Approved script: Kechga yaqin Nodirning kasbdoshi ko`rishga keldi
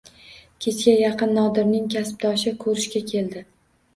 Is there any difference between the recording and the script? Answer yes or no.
no